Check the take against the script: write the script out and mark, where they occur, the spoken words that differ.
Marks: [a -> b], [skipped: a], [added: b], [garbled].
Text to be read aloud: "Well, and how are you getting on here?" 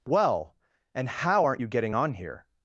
"Well, and how [are -> aren't] you getting on here?"